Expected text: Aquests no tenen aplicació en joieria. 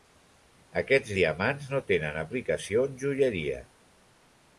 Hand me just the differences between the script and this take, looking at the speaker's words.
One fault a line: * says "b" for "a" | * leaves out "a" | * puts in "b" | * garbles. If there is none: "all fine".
* puts in "diamants"